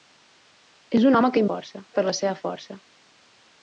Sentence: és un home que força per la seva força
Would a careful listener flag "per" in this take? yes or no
no